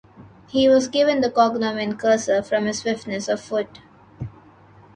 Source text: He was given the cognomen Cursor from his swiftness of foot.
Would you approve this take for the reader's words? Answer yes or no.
yes